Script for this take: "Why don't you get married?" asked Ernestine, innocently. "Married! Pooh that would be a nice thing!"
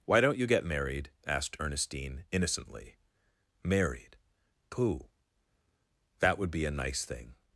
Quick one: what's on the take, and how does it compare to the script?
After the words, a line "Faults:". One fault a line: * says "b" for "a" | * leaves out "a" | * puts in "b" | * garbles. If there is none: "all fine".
"Why don't you get married?" asked Ernestine, innocently. "Married! Pooh that would be a nice thing!"
Faults:
all fine